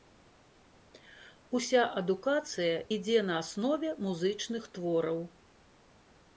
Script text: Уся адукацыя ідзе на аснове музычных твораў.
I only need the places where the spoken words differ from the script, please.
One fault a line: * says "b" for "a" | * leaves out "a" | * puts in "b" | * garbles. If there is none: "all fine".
all fine